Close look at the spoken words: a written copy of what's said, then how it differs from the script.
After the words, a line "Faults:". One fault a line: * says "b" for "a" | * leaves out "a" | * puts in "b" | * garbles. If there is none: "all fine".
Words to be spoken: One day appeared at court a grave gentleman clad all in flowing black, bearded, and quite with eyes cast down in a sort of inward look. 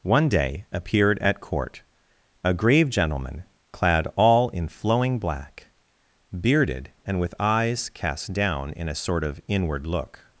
One day appeared at court a grave gentleman clad all in flowing black, bearded, and with eyes cast down in a sort of inward look.
Faults:
* leaves out "quite"